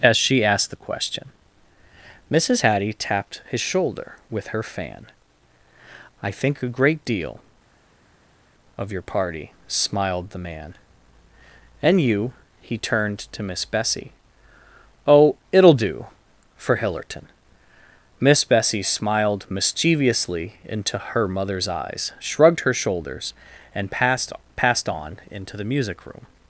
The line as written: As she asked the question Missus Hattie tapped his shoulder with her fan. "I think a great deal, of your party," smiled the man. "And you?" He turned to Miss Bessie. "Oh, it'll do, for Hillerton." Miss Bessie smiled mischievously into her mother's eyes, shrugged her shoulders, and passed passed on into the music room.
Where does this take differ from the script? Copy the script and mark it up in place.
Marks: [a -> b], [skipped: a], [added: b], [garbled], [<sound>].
As she asked the question Missus Hattie tapped his shoulder with her fan. "I think a great deal, of your party," smiled the man. "And you?" He turned to Miss Bessie. "Oh, it'll do, for Hillerton." Miss Bessie smiled mischievously into her mother's eyes, shrugged her shoulders, and passed passed on into the music room.